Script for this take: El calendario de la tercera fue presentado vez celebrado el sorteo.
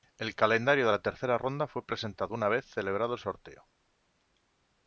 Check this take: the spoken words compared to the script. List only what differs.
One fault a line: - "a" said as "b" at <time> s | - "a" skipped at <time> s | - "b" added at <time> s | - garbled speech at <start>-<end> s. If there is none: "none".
- "ronda" added at 1.4 s
- "una" added at 2.3 s